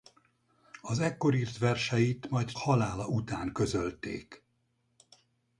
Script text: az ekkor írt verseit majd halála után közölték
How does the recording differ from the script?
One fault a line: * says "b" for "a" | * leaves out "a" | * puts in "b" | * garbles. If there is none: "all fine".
all fine